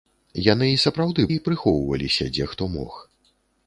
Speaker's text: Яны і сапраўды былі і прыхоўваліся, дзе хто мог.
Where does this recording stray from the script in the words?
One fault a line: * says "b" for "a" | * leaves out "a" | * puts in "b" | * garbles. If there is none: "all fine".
* leaves out "былі"